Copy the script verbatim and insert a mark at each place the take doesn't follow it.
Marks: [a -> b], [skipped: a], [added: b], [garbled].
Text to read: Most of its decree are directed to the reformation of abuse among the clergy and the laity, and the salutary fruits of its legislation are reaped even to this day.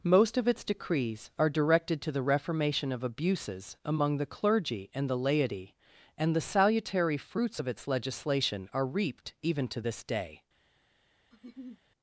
Most of its [decree -> decrees] are directed to the reformation of [abuse -> abuses] among the clergy and the laity, and the salutary fruits of its legislation are reaped even to this day.